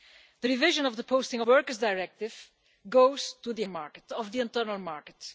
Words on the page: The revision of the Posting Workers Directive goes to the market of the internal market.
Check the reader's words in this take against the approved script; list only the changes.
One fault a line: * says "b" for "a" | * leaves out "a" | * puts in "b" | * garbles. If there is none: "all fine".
all fine